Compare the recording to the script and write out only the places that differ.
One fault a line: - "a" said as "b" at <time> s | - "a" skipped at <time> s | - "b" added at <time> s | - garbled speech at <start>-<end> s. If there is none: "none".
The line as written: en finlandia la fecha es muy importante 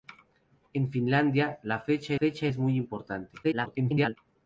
- "fecha" added at 2.1 s
- garbled speech at 3.4-4.2 s